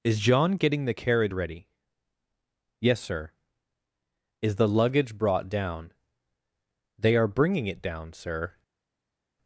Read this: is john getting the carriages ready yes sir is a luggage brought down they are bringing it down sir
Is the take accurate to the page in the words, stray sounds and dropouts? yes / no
no